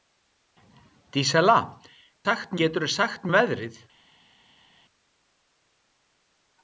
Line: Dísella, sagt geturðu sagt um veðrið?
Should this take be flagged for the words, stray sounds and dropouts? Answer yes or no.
no